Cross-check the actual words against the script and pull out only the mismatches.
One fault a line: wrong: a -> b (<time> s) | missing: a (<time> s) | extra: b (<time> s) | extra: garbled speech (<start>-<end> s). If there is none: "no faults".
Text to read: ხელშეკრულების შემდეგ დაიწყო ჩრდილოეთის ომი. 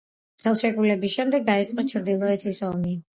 no faults